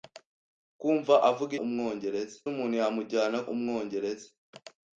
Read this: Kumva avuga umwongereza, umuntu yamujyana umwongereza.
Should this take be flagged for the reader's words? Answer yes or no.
no